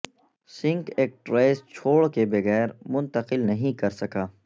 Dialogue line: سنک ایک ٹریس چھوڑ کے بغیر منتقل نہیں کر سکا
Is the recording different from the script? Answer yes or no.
no